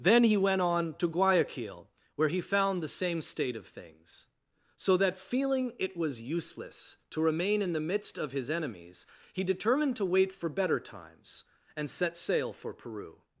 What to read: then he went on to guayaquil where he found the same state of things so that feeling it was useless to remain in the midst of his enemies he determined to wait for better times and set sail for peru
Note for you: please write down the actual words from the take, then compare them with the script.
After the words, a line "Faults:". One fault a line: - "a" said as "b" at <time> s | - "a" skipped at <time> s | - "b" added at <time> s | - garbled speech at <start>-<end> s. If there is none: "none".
then he went on to guayaquil where he found the same state of things so that feeling it was useless to remain in the midst of his enemies he determined to wait for better times and set sail for peru
Faults:
none